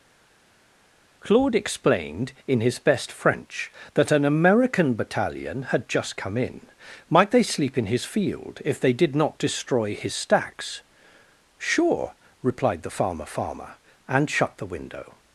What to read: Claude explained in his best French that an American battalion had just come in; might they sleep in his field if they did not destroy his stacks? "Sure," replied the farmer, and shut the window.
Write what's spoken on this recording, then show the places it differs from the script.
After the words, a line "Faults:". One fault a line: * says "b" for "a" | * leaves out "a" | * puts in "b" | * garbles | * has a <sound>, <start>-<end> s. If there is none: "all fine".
Claude explained in his best French that an American battalion had just come in; might they sleep in his field if they did not destroy his stacks? "Sure," replied the farmer farmer, and shut the window.
Faults:
* puts in "farmer"